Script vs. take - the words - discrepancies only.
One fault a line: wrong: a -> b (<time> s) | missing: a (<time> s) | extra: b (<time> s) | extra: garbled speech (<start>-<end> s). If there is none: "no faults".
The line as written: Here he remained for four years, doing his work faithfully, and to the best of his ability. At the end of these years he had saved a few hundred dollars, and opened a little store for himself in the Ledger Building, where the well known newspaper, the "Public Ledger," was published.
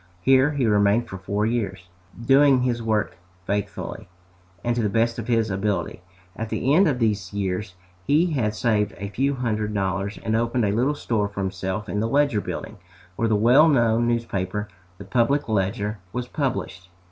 no faults